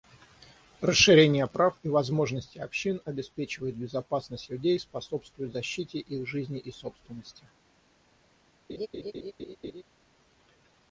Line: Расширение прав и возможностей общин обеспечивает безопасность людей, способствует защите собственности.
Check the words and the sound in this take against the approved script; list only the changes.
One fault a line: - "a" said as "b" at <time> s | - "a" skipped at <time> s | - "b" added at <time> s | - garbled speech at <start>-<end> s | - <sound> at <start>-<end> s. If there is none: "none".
- "их жизни и" added at 6.0 s
- laugh at 8.7-9.8 s